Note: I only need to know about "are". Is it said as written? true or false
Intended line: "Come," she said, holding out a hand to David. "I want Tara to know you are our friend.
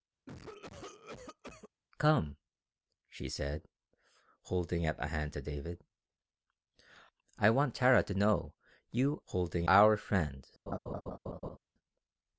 false